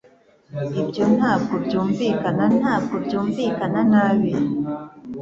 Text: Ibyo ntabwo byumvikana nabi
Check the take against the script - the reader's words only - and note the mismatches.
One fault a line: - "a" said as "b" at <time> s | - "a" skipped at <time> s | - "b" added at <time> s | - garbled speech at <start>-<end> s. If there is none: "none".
- "ntabwo byumvikana" added at 2.6 s